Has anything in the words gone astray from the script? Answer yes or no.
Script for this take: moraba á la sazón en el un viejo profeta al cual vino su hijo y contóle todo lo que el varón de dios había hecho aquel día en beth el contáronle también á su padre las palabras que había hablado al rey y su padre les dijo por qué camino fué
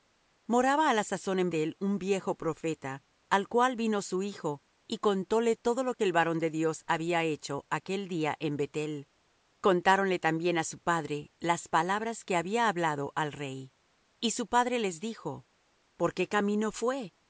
no